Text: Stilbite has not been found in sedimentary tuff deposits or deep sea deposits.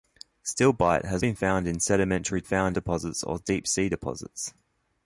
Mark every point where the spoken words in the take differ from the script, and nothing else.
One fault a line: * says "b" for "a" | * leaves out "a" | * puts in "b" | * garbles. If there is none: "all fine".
* leaves out "not"
* says "found" for "tuff"